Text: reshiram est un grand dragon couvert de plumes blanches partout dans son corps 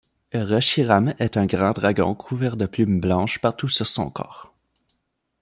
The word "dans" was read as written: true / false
false